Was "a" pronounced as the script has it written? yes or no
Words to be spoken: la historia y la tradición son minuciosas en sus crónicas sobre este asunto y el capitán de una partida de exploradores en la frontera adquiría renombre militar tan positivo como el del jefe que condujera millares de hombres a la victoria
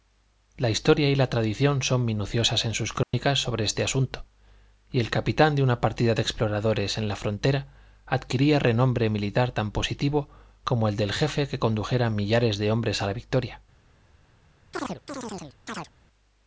yes